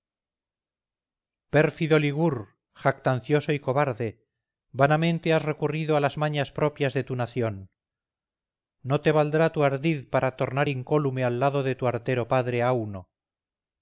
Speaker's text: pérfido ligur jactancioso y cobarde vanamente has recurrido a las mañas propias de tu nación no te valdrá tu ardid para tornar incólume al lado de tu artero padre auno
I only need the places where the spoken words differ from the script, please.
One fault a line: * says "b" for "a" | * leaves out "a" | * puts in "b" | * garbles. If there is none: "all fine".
all fine